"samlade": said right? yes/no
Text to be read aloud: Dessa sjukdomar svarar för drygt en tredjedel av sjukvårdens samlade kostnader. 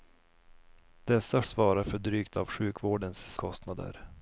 no